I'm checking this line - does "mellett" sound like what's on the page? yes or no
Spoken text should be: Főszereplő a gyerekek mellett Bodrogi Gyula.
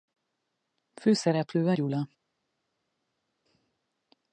no